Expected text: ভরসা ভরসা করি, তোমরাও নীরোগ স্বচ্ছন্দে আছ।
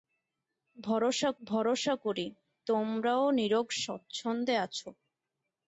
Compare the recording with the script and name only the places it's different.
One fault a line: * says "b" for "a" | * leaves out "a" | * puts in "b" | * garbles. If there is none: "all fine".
all fine